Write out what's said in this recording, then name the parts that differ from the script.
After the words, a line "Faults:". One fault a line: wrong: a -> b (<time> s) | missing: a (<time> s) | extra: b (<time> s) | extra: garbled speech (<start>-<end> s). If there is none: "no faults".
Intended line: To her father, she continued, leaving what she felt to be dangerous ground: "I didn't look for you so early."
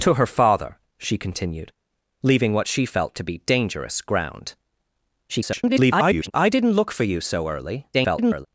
To her father, she continued, leaving what she felt to be dangerous ground: [garbled] "I didn't look for you so early." [garbled]
Faults:
extra: garbled speech (5.3-6.3 s)
extra: garbled speech (7.9-8.5 s)